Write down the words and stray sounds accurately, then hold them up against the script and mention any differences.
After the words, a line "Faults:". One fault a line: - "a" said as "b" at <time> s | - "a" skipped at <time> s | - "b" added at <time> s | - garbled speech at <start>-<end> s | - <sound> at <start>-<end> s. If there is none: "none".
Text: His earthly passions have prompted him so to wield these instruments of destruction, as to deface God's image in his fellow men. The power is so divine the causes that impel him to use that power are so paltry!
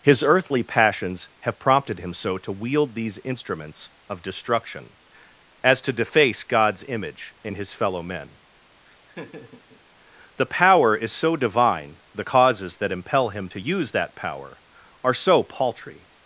His earthly passions have prompted him so to wield these instruments of destruction, as to deface God's image in his fellow men. The power is so divine the causes that impel him to use that power are so paltry!
Faults:
- laugh at 8.8-9.8 s